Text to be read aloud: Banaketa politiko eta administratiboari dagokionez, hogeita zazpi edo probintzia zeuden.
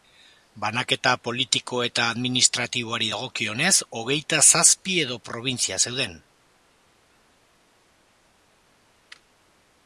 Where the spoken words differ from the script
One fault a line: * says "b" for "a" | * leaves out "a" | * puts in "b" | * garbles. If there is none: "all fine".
all fine